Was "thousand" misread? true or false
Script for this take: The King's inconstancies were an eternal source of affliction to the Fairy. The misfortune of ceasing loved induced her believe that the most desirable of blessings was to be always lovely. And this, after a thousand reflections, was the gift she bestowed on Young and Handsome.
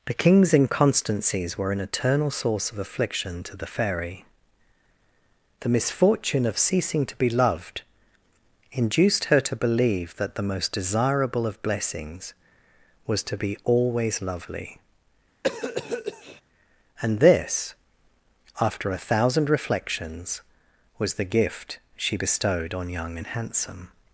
false